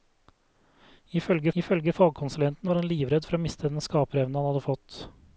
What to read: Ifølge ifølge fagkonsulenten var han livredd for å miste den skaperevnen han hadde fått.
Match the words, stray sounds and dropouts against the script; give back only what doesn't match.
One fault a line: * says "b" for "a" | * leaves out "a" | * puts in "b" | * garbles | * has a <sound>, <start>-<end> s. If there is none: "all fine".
all fine